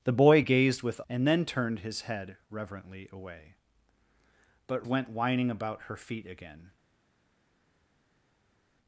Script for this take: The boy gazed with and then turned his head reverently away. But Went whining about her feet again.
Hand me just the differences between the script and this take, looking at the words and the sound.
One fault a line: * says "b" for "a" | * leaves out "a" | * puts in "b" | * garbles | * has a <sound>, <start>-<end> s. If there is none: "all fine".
all fine